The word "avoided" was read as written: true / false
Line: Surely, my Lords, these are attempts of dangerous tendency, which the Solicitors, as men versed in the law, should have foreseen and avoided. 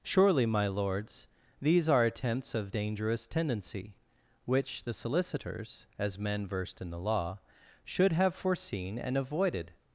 true